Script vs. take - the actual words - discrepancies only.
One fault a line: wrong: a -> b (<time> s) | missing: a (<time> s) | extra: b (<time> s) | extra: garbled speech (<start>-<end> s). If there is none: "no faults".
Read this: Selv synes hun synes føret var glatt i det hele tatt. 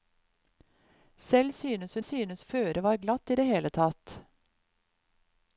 no faults